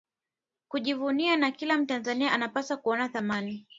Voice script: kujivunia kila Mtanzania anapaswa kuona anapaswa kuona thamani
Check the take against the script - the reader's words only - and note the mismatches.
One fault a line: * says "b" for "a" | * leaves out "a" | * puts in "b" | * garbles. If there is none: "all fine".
* puts in "na"
* leaves out "anapaswa kuona"